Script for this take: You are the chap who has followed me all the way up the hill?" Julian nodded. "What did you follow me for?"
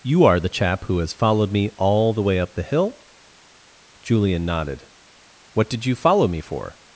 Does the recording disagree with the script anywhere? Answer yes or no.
no